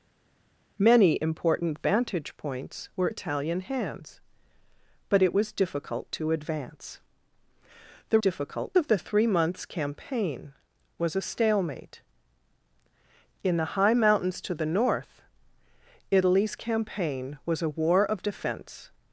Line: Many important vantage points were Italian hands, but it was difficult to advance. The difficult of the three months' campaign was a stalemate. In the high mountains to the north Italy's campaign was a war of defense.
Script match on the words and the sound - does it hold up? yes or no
yes